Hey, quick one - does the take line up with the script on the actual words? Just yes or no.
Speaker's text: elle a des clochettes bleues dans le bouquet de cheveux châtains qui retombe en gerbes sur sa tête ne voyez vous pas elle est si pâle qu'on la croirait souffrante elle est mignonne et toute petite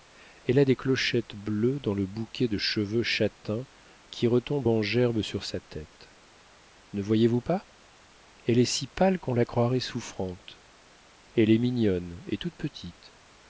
yes